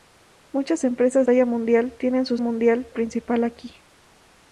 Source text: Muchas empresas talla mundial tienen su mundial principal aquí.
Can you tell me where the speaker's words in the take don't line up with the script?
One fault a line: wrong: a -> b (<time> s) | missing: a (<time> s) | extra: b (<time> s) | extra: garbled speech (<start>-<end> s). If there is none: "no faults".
no faults